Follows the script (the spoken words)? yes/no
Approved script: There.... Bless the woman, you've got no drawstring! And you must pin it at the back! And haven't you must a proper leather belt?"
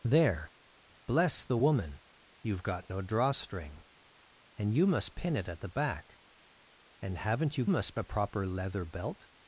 yes